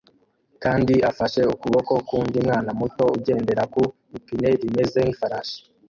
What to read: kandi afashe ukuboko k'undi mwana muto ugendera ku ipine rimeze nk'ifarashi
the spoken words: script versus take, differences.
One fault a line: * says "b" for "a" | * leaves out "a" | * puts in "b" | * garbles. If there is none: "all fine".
all fine